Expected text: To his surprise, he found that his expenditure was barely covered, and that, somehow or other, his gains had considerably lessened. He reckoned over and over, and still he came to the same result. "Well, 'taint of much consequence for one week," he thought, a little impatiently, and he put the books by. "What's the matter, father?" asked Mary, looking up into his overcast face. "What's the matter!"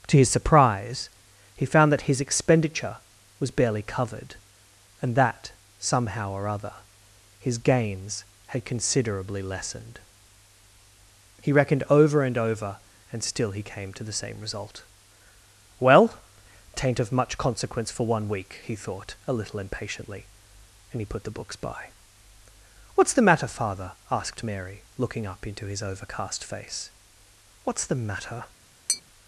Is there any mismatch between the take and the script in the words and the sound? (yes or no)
yes